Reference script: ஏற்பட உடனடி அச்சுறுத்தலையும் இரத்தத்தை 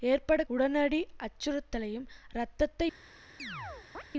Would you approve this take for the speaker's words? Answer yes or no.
yes